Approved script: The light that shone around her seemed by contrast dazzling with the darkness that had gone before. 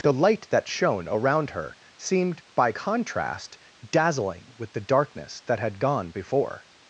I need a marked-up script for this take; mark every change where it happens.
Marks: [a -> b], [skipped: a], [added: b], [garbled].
The light that shone around her seemed by contrast dazzling with the darkness that had gone before.